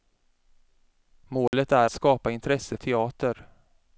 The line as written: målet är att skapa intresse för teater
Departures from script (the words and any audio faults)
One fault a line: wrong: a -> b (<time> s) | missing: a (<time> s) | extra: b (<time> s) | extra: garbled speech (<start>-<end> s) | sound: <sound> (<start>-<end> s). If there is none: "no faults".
sound: dropout (1.5-1.5 s)
missing: att (1.9 s)
missing: för (2.8 s)